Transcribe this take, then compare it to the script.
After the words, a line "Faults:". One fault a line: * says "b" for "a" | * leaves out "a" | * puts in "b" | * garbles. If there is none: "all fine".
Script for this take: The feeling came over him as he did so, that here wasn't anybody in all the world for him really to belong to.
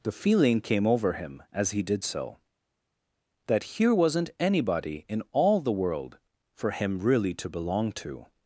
The feeling came over him as he did so, that here wasn't anybody in all the world for him really to belong to.
Faults:
all fine